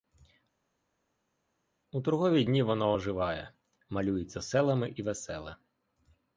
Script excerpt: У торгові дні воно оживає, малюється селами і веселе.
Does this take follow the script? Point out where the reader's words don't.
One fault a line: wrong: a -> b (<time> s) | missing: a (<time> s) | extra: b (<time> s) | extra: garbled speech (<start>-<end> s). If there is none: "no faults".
no faults